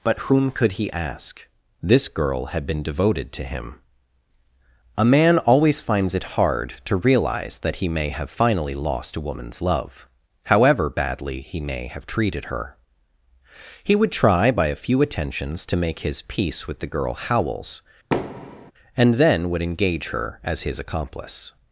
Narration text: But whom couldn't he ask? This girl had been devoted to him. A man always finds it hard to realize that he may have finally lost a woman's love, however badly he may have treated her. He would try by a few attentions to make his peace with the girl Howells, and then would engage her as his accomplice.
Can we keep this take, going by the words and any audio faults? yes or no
no